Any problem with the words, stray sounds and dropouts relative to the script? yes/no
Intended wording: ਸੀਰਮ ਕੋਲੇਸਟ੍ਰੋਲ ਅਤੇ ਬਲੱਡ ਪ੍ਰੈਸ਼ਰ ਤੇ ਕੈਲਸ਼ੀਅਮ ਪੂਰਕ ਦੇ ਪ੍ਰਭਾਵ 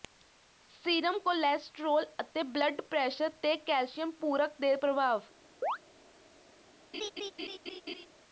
yes